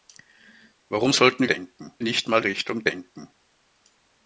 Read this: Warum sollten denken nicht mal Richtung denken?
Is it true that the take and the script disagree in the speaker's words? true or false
false